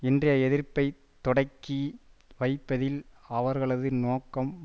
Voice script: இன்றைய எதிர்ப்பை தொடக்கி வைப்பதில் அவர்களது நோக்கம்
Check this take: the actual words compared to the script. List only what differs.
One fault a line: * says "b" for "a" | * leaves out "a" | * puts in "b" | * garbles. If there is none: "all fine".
all fine